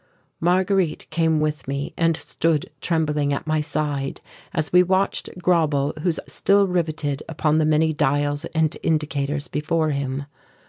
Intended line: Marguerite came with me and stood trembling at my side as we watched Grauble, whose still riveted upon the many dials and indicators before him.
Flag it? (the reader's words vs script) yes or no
no